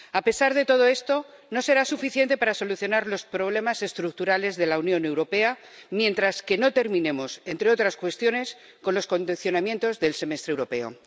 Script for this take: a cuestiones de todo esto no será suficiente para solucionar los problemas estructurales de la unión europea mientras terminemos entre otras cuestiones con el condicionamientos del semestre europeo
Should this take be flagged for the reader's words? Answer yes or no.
yes